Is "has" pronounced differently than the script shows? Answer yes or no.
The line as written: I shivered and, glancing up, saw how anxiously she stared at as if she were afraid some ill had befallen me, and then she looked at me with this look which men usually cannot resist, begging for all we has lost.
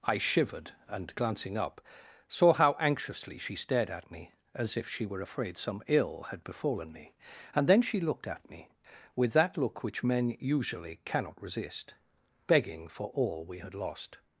yes